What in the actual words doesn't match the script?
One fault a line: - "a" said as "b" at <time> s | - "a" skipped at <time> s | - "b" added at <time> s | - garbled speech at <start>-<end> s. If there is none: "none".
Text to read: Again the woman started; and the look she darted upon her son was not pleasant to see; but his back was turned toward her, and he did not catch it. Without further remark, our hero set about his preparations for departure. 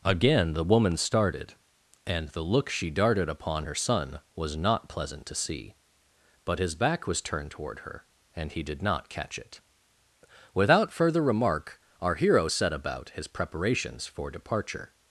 none